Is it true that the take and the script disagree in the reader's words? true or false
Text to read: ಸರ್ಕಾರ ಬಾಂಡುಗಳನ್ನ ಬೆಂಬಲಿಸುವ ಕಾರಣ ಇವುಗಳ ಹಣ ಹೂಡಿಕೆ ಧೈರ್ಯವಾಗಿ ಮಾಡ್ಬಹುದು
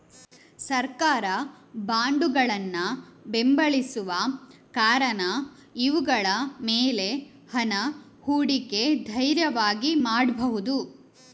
true